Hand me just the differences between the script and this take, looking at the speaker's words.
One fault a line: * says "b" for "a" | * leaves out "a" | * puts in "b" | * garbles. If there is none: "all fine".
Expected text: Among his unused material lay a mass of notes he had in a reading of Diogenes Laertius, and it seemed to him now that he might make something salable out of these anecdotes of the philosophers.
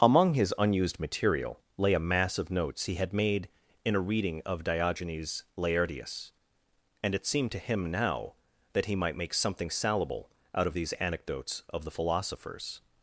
* puts in "made"